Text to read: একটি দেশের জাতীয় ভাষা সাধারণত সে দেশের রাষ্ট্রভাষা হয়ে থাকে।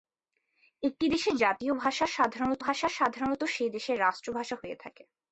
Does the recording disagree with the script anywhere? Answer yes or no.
yes